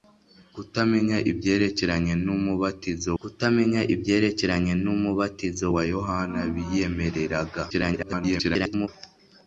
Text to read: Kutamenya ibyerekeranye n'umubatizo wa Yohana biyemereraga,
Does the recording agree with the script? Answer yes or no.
no